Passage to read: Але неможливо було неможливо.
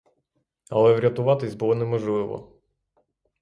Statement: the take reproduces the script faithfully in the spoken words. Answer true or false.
false